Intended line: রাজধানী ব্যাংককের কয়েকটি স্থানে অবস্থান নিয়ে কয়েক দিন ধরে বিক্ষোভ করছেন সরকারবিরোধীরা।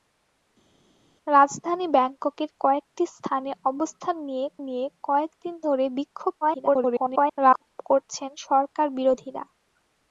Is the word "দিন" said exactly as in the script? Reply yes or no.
yes